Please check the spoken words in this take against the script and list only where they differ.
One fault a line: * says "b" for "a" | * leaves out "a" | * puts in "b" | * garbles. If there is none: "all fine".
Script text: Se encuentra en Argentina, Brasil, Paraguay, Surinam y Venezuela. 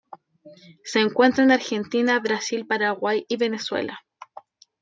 * leaves out "Surinam"